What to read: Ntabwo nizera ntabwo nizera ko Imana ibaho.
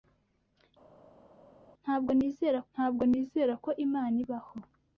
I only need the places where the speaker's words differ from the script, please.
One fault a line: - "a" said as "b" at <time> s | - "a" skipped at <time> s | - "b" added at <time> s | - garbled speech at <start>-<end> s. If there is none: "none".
none